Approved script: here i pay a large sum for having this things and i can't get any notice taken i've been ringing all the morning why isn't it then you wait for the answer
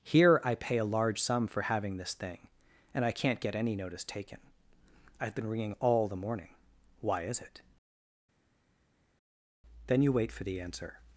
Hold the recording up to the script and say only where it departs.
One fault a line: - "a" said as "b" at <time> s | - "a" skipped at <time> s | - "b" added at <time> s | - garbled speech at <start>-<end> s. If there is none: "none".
- "things" said as "thing" at 2.1 s
- "isn't" said as "is" at 7.2 s